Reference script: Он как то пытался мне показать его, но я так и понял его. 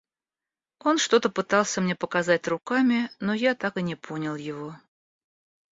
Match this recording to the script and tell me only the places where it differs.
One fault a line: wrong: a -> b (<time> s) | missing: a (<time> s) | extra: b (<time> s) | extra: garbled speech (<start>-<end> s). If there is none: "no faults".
wrong: как -> что (1.0 s)
wrong: его -> руками (2.5 s)
extra: не (3.8 s)